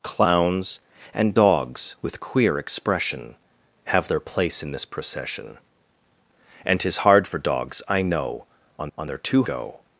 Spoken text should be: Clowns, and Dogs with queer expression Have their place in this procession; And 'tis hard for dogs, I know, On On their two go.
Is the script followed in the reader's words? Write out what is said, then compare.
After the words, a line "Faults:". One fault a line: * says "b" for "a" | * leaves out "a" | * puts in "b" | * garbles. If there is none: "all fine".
Clowns, and Dogs with queer expression Have their place in this procession; And 'tis hard for dogs, I know, On On their two go.
Faults:
all fine